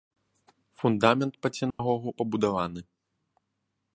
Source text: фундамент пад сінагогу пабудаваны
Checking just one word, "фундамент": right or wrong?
right